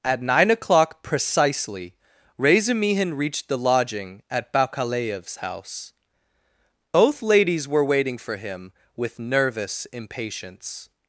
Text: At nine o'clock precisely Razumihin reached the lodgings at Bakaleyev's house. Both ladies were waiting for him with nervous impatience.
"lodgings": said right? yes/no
no